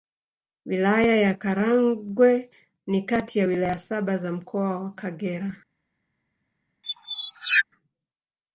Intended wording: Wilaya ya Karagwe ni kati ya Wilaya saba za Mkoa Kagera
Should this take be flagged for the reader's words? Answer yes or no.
yes